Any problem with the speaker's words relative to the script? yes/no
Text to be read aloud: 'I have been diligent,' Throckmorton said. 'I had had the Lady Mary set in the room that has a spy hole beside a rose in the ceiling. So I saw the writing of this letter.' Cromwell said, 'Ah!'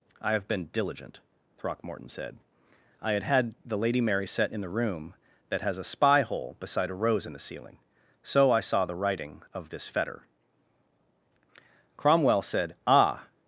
yes